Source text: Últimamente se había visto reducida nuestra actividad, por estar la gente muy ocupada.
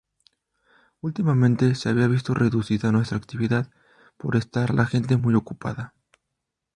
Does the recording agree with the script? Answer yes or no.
yes